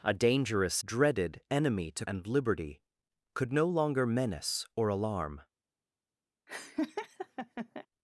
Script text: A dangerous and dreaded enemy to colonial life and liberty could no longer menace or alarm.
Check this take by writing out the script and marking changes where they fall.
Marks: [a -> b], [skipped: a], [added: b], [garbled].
A dangerous [skipped: and] dreaded enemy to [skipped: colonial life] and liberty could no longer menace or alarm.